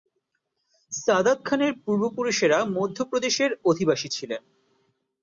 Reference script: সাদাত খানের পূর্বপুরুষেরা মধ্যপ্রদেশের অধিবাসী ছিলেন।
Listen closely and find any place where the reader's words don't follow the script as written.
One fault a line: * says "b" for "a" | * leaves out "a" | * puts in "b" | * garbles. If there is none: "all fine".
all fine